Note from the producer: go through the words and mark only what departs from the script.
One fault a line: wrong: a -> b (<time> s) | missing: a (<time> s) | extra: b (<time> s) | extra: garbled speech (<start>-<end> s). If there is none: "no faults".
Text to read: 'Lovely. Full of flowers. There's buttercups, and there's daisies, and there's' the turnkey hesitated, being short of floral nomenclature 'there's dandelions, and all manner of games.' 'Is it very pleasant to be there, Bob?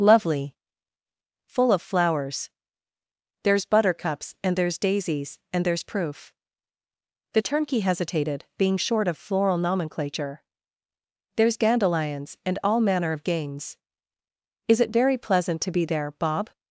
extra: proof (5.8 s)